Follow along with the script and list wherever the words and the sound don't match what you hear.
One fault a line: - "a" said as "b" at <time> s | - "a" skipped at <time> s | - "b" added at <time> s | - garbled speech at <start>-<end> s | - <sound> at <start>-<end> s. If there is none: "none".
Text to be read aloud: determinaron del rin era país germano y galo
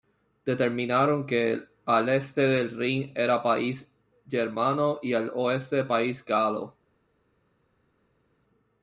- "que al este" added at 1.3 s
- "al oeste país" added at 5.1 s